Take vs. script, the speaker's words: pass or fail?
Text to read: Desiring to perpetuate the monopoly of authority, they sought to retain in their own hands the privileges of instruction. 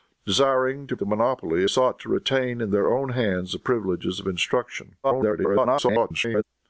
fail